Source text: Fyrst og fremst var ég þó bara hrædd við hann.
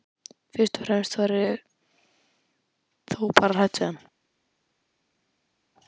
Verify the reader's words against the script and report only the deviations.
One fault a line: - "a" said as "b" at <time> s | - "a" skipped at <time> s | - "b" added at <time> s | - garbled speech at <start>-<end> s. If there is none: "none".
none